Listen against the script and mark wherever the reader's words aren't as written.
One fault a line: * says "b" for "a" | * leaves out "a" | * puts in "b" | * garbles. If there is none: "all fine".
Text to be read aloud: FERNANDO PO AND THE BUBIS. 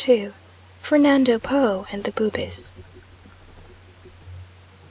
all fine